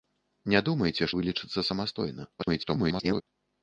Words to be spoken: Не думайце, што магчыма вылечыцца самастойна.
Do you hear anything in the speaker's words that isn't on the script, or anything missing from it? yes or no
yes